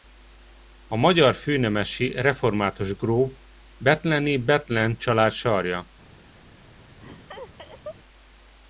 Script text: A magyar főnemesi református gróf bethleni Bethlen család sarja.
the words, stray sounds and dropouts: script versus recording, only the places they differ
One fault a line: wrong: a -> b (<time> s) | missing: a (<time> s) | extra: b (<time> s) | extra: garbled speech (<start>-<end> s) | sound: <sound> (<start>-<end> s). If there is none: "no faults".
sound: laugh (7.0-8.0 s)